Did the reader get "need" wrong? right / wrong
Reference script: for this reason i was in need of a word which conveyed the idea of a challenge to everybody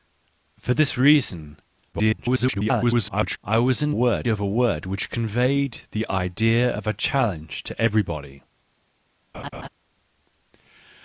wrong